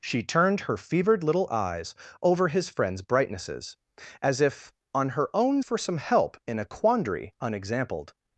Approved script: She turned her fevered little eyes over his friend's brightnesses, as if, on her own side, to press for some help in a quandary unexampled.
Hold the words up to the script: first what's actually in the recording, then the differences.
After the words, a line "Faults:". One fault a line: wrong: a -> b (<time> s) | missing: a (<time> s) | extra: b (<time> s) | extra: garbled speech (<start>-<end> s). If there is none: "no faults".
She turned her fevered little eyes over his friend's brightnesses, as if, on her own for some help in a quandary unexampled.
Faults:
missing: side to press (5.6 s)